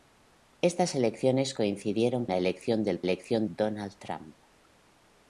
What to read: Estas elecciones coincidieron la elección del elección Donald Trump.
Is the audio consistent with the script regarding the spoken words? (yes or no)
yes